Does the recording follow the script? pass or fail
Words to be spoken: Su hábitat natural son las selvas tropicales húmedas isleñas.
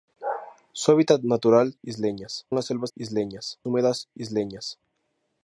fail